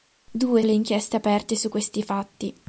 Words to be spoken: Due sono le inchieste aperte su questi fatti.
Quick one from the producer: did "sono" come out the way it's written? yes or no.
no